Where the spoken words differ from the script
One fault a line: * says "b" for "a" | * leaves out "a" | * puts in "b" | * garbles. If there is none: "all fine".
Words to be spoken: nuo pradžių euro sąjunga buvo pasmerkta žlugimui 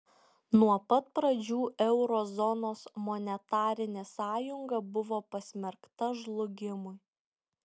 * puts in "pat"
* puts in "zonos monetarinė"